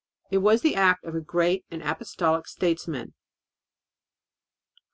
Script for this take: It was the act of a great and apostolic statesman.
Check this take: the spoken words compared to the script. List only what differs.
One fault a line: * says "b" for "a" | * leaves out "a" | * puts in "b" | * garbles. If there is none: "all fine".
all fine